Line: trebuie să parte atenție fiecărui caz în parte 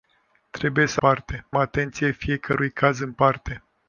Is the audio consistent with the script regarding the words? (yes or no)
yes